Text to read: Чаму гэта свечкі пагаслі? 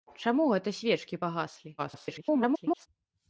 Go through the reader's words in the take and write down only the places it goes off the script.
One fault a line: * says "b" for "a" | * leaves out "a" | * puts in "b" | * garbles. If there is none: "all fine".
* garbles